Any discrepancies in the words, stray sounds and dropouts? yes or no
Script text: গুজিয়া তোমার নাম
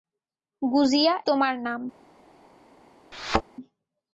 yes